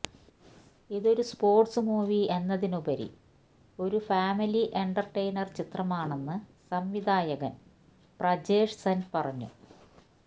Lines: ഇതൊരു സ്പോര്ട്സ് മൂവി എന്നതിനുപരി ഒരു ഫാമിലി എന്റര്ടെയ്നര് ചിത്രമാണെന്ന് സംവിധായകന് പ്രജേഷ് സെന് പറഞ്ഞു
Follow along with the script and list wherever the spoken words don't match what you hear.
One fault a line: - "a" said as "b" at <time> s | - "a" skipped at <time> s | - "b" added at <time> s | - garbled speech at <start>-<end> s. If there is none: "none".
none